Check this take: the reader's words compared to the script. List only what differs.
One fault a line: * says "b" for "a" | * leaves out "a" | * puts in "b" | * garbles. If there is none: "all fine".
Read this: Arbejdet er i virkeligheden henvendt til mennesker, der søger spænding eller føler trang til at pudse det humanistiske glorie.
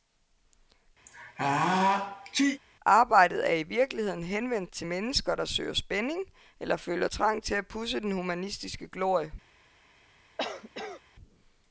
* says "den" for "det"